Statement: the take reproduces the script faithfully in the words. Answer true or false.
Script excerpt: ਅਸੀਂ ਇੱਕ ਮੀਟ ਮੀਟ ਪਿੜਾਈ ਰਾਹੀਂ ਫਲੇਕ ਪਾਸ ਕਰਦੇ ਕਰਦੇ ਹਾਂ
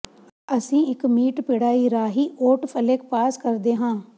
false